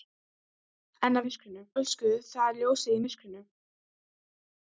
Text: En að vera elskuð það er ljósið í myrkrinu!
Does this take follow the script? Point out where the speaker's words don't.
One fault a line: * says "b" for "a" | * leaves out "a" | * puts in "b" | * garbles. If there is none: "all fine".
* says "myrkrinu" for "vera"